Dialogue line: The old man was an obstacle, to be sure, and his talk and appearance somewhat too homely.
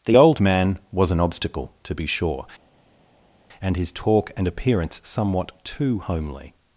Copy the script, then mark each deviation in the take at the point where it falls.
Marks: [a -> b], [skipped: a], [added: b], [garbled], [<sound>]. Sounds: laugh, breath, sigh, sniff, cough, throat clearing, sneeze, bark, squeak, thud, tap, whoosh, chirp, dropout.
The old man was an obstacle, to be sure, and his talk and appearance somewhat too homely.